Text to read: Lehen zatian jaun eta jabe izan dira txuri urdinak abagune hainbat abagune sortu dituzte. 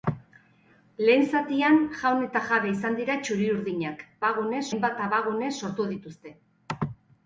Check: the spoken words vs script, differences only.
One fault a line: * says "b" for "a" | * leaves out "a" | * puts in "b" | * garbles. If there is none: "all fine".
all fine